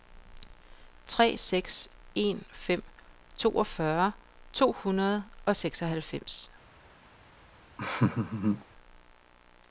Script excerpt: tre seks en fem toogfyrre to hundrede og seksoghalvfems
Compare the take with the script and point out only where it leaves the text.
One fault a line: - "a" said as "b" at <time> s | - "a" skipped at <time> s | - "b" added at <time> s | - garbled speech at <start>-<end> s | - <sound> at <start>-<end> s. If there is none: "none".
- laugh at 7.8-8.7 s